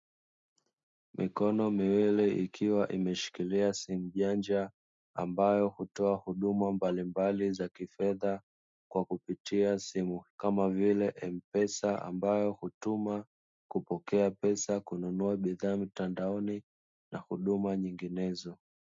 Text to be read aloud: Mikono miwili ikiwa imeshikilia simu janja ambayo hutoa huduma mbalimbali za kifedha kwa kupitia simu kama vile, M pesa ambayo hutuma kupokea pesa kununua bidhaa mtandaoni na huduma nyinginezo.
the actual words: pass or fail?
pass